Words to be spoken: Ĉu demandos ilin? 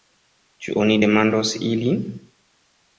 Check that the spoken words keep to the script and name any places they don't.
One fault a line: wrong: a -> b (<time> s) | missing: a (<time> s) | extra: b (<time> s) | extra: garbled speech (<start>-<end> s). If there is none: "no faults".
extra: oni (0.8 s)